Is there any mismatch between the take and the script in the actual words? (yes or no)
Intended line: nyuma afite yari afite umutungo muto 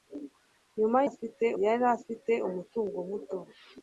no